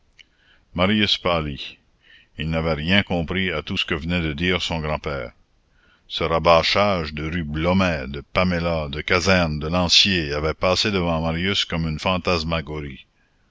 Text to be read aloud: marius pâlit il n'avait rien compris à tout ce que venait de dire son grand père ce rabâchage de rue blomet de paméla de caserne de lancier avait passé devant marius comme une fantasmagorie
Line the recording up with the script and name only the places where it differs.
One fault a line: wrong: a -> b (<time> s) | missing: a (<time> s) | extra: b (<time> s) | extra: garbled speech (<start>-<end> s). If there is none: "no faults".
no faults